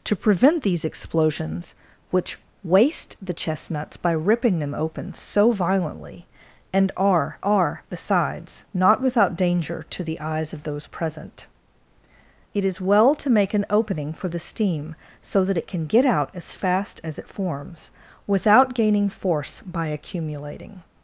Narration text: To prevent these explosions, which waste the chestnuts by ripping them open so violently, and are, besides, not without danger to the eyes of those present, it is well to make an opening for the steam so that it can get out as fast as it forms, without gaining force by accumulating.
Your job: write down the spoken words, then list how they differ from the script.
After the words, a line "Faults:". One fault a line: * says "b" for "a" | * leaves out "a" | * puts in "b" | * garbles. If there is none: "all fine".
To prevent these explosions, which waste the chestnuts by ripping them open so violently, and are are, besides, not without danger to the eyes of those present, it is well to make an opening for the steam so that it can get out as fast as it forms, without gaining force by accumulating.
Faults:
* puts in "are"